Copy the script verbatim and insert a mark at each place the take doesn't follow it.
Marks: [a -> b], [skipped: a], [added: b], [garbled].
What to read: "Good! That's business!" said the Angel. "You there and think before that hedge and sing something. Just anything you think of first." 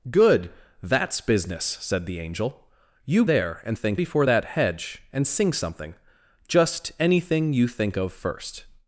"Good! That's business!" said the Angel. "You there and think before that hedge and sing something. Just anything you think of first."